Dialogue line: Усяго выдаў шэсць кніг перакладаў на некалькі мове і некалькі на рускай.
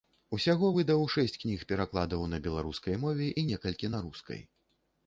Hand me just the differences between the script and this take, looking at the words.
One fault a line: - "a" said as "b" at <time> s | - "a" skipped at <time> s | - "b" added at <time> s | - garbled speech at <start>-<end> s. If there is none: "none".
- "некалькі" said as "беларускай" at 2.5 s